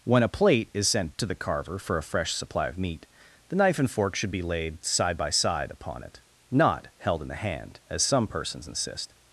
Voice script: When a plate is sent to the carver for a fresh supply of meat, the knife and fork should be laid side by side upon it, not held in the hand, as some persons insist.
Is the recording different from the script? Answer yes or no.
no